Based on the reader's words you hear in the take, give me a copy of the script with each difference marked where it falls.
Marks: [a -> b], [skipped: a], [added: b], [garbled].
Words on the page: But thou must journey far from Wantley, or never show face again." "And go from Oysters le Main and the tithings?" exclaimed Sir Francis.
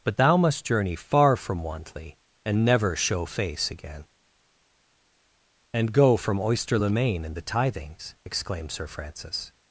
But thou must journey far from Wantley, [or -> and] never show face again." "And go from [Oysters -> Oyster] le Main and the tithings?" exclaimed Sir Francis.